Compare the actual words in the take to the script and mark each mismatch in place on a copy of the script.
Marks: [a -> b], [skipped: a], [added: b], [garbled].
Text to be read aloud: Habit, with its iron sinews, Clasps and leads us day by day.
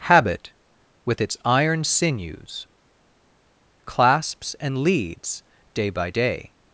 Habit, with its iron sinews, Clasps and leads [skipped: us] day by day.